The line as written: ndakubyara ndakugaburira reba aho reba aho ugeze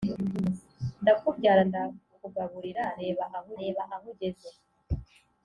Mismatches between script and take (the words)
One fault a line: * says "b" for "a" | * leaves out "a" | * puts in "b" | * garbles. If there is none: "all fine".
all fine